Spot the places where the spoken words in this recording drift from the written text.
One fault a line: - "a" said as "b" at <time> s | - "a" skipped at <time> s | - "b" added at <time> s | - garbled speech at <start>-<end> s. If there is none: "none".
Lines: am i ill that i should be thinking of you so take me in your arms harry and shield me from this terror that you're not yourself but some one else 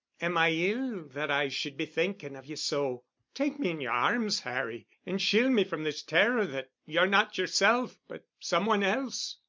none